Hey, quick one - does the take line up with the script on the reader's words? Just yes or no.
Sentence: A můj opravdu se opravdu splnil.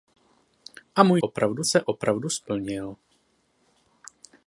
yes